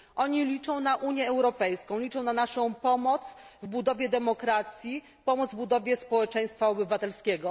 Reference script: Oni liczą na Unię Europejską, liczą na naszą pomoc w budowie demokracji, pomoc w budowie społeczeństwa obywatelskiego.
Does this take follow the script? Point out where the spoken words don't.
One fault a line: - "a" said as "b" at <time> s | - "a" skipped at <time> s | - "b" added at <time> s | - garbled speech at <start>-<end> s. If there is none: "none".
none